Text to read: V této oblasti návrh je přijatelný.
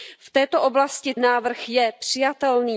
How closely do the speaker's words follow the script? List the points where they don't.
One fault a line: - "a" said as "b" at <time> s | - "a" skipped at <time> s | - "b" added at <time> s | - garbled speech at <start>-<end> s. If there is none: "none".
none